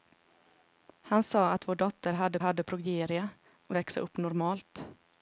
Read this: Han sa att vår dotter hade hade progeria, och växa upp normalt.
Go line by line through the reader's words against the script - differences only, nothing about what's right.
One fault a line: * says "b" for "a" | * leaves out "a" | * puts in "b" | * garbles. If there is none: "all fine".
all fine